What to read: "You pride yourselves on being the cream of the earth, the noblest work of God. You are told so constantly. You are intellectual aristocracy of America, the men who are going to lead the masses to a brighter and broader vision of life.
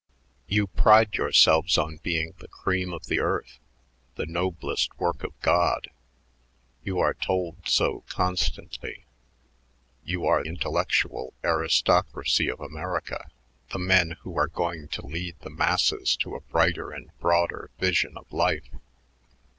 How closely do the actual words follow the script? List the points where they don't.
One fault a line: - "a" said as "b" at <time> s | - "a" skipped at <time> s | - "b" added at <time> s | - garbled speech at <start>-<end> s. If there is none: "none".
none